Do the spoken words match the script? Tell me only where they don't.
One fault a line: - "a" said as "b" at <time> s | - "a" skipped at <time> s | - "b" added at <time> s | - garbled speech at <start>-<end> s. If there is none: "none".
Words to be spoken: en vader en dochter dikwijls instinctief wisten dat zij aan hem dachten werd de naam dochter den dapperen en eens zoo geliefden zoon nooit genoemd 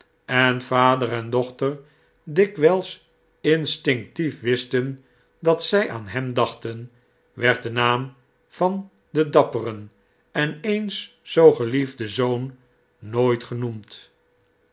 - "dochter" said as "van" at 8.5 s